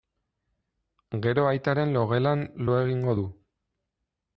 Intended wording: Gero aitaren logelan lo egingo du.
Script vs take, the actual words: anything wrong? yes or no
no